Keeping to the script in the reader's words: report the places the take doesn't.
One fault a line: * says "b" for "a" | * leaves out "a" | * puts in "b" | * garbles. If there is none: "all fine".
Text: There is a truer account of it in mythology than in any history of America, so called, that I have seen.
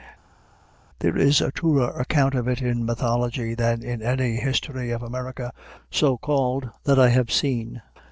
all fine